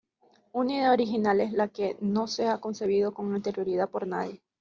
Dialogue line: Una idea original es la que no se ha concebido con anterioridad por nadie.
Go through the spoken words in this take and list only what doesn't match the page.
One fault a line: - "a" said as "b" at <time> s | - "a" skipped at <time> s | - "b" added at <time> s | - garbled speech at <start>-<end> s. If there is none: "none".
none